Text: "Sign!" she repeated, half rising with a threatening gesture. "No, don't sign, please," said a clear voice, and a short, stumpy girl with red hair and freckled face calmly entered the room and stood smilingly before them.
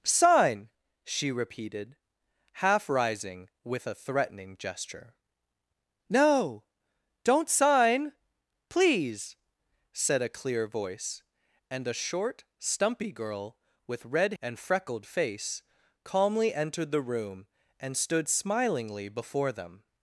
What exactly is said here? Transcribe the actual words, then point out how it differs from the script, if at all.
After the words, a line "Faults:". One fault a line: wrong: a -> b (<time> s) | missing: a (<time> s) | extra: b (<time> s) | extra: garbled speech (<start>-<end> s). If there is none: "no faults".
"Sign!" she repeated, half rising with a threatening gesture. "No, don't sign, please," said a clear voice, and a short, stumpy girl with red and freckled face calmly entered the room and stood smilingly before them.
Faults:
missing: hair (14.3 s)